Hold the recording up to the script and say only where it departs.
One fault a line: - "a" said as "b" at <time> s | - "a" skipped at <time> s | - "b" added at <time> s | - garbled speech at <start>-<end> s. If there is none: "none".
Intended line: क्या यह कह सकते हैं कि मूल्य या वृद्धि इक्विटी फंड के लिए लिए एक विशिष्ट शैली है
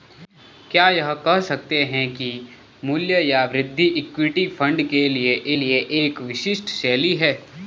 none